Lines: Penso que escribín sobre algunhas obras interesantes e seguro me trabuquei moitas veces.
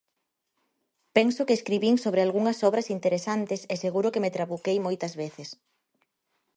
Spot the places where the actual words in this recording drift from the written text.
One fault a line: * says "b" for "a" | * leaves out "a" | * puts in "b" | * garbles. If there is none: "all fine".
* puts in "que"